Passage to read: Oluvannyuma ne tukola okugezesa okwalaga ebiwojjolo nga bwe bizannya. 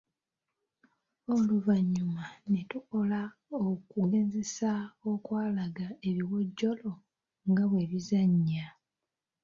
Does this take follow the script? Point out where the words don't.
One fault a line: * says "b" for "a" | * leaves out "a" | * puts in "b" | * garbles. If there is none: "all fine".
all fine